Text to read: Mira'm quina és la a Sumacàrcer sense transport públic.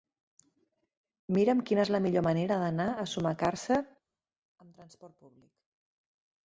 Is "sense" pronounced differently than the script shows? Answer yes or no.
yes